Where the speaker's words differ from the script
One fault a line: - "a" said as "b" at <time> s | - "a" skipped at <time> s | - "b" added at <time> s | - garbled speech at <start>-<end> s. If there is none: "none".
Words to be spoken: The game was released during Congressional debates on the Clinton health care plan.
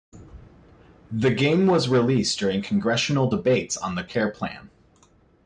- "Clinton health" skipped at 4.0 s